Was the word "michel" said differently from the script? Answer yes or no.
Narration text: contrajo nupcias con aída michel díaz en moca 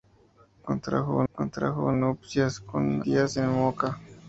yes